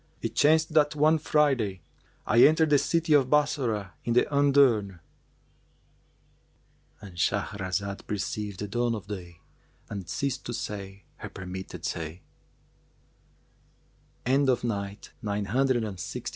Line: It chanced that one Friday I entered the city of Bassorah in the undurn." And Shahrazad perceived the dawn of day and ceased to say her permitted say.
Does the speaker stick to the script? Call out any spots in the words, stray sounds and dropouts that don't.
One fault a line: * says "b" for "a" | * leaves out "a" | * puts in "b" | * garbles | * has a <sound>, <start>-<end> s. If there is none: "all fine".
all fine